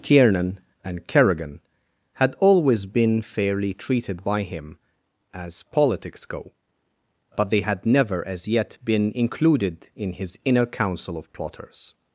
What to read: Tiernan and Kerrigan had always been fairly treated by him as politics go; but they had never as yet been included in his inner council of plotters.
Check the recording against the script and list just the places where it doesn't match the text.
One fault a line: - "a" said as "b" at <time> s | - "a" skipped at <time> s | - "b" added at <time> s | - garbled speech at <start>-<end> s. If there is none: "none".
none